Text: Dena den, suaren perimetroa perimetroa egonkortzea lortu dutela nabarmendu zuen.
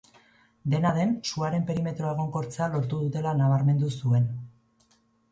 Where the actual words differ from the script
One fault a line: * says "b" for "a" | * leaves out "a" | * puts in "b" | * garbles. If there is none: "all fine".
* leaves out "perimetroa"